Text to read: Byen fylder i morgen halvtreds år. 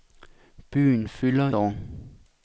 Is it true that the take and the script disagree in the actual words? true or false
true